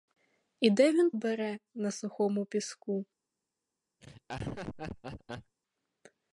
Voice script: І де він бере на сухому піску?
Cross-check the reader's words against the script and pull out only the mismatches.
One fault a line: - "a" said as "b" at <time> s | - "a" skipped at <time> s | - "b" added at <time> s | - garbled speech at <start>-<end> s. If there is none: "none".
none